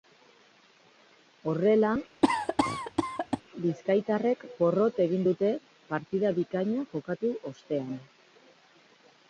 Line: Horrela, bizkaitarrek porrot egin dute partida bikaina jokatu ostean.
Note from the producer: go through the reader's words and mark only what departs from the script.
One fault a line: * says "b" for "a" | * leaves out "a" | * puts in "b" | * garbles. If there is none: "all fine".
all fine